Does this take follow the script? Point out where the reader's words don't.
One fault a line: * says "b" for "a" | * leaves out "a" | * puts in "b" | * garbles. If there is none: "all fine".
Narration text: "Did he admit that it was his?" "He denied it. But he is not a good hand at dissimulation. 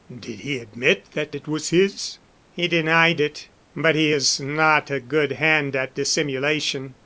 all fine